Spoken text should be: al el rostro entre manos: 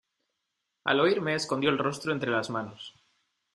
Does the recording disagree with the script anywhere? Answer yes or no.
yes